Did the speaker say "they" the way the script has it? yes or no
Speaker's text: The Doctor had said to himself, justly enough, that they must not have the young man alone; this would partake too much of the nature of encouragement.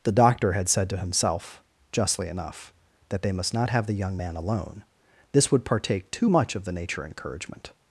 yes